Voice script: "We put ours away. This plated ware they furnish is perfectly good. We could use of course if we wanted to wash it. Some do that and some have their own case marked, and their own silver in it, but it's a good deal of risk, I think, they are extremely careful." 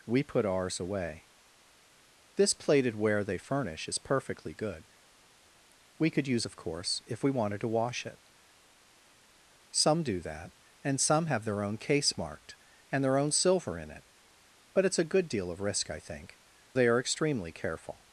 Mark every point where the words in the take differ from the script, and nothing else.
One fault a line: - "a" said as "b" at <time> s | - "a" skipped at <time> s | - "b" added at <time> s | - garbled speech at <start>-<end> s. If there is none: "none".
none